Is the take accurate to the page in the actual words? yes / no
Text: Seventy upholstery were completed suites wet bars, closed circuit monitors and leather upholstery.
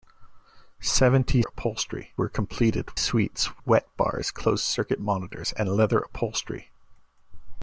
yes